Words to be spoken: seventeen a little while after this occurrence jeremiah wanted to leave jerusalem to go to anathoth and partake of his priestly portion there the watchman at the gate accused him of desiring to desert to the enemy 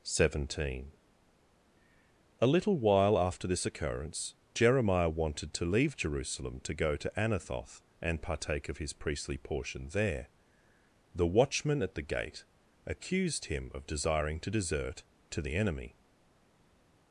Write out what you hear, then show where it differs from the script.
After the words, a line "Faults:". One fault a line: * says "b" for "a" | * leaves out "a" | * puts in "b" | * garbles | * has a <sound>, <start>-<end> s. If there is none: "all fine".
seventeen a little while after this occurrence jeremiah wanted to leave jerusalem to go to anathoth and partake of his priestly portion there the watchman at the gate accused him of desiring to desert to the enemy
Faults:
all fine